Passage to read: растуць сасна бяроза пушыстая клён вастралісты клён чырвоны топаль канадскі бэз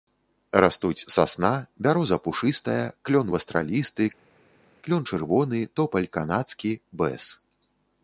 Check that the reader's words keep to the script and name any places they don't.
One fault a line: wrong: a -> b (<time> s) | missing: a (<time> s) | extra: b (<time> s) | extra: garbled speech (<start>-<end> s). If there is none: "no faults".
no faults